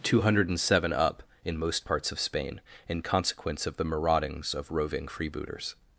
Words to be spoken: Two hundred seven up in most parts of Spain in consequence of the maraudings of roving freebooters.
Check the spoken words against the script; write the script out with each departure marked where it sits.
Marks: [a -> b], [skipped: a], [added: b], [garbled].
Two hundred seven up in most parts of Spain in consequence of the maraudings of roving freebooters.